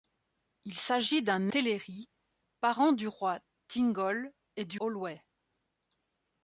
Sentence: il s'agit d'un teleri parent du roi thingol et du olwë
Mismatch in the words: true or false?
false